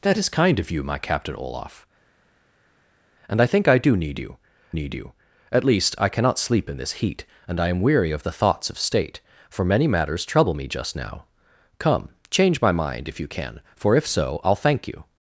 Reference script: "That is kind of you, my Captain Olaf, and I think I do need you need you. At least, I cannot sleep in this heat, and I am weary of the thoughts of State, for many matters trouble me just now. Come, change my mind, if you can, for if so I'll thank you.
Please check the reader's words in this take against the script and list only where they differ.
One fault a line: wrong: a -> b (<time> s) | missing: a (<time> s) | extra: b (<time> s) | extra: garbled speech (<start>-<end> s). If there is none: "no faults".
no faults